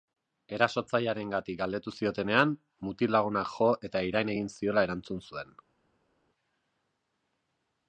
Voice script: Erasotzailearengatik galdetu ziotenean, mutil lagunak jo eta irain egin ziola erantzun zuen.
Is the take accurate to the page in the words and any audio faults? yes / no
yes